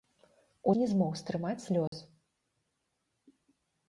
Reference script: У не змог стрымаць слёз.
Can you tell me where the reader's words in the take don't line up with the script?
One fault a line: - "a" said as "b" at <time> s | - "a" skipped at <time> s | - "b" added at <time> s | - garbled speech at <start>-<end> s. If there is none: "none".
none